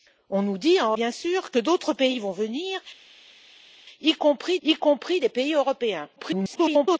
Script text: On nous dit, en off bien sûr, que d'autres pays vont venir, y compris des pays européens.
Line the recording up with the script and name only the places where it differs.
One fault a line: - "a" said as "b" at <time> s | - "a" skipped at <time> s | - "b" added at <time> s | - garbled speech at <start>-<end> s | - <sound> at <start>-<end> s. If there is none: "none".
- "off" skipped at 0.9 s
- "y compris" added at 4.6 s
- garbled speech at 6.2-7.0 s